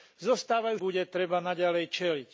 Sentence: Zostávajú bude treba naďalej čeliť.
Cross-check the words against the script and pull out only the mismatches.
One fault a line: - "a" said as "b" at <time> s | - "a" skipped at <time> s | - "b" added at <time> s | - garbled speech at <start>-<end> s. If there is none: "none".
none